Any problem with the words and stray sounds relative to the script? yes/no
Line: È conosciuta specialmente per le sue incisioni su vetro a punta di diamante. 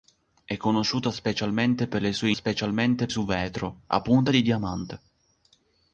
yes